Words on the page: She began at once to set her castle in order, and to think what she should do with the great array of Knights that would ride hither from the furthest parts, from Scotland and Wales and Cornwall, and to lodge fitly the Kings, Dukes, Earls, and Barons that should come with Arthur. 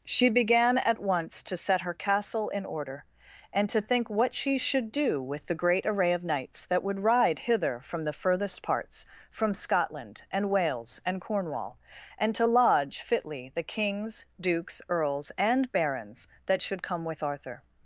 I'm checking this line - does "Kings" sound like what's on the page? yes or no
yes